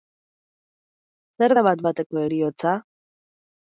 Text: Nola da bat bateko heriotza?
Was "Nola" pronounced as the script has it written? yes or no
no